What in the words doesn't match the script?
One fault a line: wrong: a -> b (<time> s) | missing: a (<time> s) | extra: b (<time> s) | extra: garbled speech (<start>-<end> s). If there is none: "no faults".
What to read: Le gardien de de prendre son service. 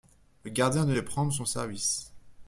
no faults